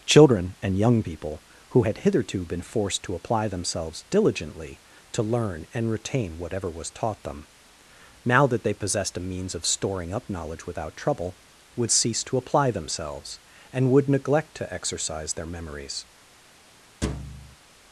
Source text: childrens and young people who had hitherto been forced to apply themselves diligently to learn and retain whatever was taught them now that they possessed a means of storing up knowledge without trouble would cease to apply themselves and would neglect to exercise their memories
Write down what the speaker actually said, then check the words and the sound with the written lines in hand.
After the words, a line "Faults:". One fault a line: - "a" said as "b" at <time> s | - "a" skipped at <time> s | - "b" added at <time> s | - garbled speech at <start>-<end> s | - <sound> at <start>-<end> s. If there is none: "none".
children and young people who had hitherto been forced to apply themselves diligently to learn and retain whatever was taught them now that they possessed a means of storing up knowledge without trouble would cease to apply themselves and would neglect to exercise their memories
Faults:
- "childrens" said as "children" at 0.1 s
- thud at 17.0-17.6 s